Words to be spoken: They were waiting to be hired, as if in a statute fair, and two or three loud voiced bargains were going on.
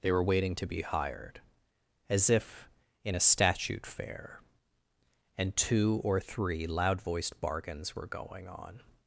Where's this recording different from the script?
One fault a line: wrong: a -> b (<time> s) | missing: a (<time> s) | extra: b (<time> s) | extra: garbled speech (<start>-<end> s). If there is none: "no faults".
no faults